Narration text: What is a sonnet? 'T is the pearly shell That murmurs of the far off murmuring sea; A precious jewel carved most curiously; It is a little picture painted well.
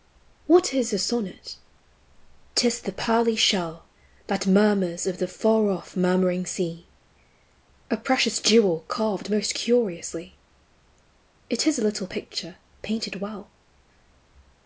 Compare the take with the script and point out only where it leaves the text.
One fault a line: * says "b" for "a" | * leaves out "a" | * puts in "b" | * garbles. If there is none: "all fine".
all fine